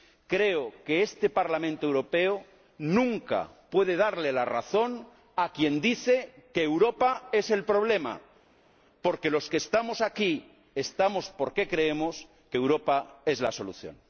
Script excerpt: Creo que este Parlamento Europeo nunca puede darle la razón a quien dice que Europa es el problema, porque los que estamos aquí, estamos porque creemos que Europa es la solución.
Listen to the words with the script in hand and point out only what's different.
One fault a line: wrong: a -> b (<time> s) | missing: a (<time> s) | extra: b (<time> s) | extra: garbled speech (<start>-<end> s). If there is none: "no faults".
no faults